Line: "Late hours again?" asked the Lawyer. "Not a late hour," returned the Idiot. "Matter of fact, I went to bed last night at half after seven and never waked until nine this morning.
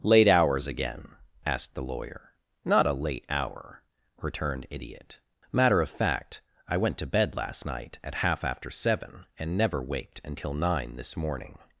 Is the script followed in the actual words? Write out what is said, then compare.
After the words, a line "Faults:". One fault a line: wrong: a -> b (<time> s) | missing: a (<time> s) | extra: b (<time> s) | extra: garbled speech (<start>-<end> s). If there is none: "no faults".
"Late hours again?" asked the Lawyer. "Not a late hour," returned Idiot. "Matter of fact, I went to bed last night at half after seven and never waked until nine this morning.
Faults:
missing: the (4.7 s)